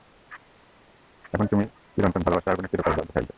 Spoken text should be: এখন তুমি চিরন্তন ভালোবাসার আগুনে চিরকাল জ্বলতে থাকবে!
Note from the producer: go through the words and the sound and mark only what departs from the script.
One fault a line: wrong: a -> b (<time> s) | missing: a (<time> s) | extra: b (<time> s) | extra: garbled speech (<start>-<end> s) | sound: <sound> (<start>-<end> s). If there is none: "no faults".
no faults